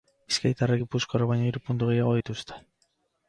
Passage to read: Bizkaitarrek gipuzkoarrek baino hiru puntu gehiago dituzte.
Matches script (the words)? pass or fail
pass